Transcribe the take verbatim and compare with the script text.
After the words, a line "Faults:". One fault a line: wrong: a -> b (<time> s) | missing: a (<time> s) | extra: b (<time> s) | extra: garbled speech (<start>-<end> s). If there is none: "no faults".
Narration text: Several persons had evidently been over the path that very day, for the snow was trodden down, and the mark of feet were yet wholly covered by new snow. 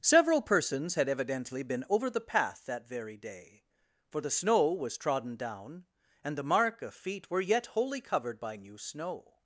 Several persons had evidently been over the path that very day, for the snow was trodden down, and the mark of feet were yet wholly covered by new snow.
Faults:
no faults